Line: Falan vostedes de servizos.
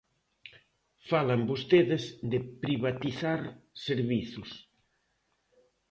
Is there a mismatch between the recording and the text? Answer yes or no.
yes